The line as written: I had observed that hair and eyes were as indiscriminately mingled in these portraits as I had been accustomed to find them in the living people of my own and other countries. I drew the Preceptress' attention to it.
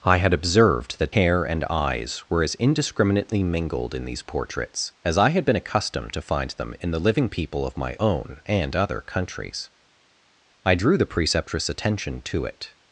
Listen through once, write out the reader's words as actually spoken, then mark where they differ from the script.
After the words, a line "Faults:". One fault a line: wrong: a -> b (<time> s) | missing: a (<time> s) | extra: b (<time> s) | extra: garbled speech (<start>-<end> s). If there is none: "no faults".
I had observed that hair and eyes were as indiscriminately mingled in these portraits as I had been accustomed to find them in the living people of my own and other countries. I drew the Preceptress' attention to it.
Faults:
no faults